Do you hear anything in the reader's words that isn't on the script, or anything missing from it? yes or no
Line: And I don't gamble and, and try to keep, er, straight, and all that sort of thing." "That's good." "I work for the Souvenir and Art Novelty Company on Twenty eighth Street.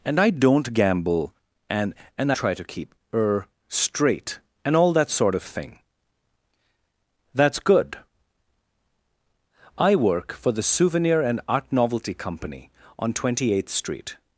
no